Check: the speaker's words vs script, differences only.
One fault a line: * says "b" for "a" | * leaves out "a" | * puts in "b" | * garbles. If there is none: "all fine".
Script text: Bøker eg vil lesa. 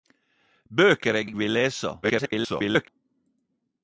* puts in "eg"
* garbles